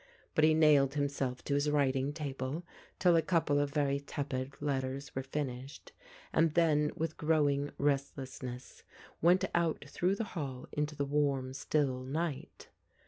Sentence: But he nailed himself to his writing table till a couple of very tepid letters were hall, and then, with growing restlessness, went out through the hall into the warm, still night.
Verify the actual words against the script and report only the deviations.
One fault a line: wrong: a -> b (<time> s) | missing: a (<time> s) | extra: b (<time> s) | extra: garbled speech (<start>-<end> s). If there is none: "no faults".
wrong: hall -> finished (5.2 s)